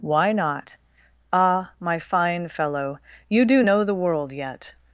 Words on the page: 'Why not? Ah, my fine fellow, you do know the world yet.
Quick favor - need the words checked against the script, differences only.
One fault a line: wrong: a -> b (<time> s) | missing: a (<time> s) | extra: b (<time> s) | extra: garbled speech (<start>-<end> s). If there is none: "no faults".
no faults